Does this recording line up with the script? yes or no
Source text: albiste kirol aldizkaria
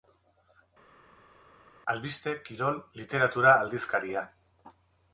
no